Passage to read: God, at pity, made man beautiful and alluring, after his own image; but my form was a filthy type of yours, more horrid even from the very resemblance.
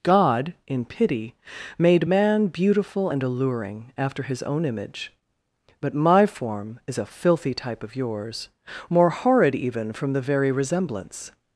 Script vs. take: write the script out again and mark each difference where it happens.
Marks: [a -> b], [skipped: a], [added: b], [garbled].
God, [at -> in] pity, made man beautiful and alluring, after his own image; but my form [was -> is] a filthy type of yours, more horrid even from the very resemblance.